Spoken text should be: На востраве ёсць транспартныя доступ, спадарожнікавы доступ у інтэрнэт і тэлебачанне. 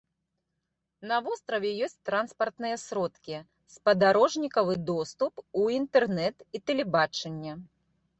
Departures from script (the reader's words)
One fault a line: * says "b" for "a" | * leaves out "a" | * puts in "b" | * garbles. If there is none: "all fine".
* says "сродкі" for "доступ"